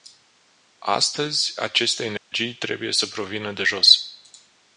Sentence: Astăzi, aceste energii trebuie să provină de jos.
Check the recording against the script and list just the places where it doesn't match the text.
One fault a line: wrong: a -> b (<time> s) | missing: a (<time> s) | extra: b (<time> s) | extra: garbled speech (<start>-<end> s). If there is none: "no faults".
no faults